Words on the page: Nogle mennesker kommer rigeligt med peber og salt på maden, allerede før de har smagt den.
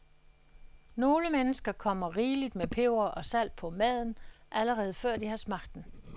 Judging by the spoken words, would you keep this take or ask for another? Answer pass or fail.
pass